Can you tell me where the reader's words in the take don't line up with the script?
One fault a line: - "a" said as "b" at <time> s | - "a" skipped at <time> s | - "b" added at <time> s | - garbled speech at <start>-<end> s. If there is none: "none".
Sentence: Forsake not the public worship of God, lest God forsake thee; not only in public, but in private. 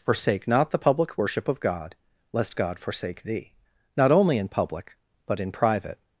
none